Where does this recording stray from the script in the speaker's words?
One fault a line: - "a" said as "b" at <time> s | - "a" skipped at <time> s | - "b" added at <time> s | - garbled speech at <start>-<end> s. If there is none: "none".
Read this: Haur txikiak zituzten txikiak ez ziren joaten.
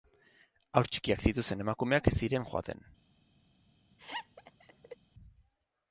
- "txikiak" said as "emakumeak" at 1.7 s